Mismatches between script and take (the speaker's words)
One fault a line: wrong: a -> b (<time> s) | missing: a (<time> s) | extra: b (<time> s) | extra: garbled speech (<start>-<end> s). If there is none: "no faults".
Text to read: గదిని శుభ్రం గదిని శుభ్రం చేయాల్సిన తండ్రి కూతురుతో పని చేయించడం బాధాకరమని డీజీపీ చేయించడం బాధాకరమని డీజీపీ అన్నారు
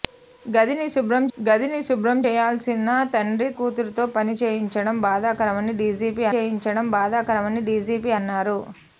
no faults